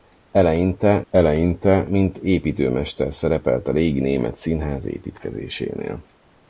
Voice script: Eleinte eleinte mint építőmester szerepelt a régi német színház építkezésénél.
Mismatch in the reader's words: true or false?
false